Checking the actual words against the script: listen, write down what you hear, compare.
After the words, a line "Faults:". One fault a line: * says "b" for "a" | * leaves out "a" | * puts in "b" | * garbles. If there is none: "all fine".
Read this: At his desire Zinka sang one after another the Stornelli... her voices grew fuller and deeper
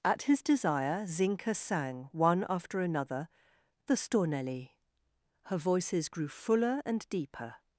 At his desire Zinka sang one after another the Stornelli... her voices grew fuller and deeper
Faults:
all fine